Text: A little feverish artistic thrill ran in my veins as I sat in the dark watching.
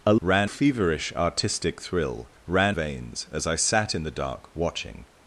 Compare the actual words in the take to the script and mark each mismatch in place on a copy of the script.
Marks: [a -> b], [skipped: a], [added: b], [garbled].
A [little -> ran] feverish artistic thrill ran [skipped: in my] veins as I sat in the dark watching.